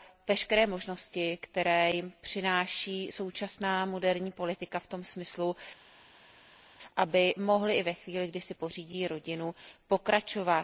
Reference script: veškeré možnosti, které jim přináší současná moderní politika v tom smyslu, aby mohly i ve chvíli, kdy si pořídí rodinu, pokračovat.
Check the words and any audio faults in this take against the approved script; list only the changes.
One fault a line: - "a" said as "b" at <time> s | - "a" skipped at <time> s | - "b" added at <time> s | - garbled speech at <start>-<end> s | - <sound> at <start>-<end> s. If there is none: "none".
none